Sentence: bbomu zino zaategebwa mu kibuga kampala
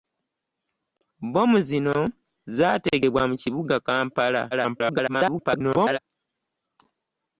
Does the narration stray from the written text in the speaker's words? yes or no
yes